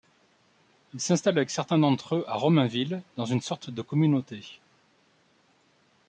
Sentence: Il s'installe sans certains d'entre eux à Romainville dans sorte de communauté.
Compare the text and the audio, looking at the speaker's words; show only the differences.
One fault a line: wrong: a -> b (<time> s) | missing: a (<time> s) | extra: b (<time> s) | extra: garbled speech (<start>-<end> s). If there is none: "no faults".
wrong: sans -> avec (1.4 s)
extra: une (3.2 s)